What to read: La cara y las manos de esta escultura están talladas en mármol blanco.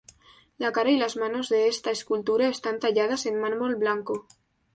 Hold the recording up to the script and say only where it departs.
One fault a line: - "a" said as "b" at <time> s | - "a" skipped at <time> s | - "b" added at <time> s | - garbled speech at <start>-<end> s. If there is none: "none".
none